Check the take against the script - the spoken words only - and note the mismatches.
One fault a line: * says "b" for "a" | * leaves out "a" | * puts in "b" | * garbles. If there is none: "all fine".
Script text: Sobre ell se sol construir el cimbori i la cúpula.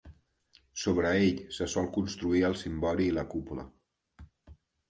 all fine